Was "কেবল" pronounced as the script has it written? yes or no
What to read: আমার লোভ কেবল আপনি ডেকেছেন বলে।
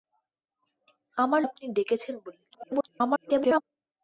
no